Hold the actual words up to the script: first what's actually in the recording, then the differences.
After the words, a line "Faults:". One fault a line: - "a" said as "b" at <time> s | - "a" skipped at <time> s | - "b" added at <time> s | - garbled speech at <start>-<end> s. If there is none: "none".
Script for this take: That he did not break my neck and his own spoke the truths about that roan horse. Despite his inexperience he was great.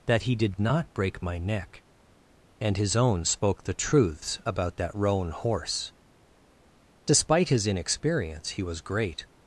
That he did not break my neck and his own spoke the truths about that roan horse. Despite his inexperience he was great.
Faults:
none